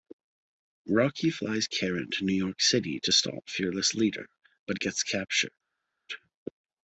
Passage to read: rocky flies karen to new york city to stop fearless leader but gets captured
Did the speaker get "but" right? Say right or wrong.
right